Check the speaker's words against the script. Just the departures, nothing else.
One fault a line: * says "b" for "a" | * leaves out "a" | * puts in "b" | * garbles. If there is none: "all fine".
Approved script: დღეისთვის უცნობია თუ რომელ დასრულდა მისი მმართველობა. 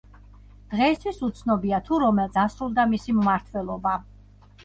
all fine